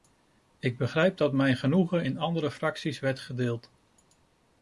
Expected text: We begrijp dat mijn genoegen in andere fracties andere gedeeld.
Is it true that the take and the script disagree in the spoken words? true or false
true